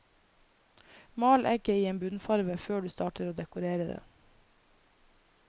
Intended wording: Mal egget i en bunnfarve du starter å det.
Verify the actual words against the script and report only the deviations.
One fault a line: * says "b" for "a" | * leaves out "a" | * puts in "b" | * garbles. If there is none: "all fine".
* puts in "før"
* puts in "dekorere"